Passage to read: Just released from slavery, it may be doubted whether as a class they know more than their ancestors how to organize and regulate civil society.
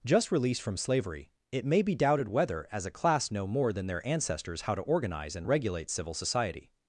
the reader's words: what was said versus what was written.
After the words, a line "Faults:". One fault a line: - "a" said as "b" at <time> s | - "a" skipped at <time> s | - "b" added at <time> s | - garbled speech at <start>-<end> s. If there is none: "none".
Just released from slavery, it may be doubted whether as a class know more than their ancestors how to organize and regulate civil society.
Faults:
- "they" skipped at 3.3 s